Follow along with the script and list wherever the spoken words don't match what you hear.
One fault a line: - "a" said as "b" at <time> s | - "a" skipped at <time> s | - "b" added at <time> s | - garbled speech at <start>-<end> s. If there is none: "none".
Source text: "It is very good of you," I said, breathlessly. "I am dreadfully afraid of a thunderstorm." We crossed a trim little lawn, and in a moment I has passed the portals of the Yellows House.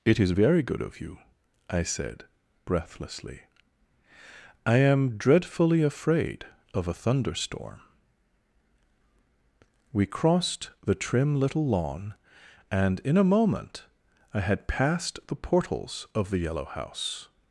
- "a" said as "the" at 10.8 s
- "has" said as "had" at 14.4 s
- "Yellows" said as "Yellow" at 16.4 s